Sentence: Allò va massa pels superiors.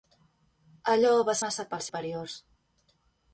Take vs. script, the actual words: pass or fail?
pass